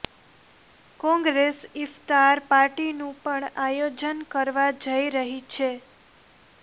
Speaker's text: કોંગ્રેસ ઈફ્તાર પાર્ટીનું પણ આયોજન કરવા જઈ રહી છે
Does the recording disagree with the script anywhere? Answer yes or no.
no